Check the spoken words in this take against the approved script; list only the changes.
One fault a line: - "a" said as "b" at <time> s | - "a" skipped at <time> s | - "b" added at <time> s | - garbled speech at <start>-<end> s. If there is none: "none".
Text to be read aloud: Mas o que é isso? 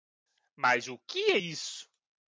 none